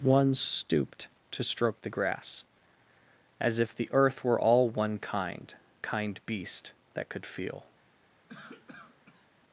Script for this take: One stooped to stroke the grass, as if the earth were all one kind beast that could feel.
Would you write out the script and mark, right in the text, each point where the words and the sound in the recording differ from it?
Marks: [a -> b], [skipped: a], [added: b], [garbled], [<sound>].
One stooped to stroke the grass, as if the earth were all one kind [added: kind] beast that could feel. [cough]